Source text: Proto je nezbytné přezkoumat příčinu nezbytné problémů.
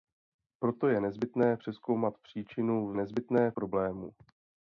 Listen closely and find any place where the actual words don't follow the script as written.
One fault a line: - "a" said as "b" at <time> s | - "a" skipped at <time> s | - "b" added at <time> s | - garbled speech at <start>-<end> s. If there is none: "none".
none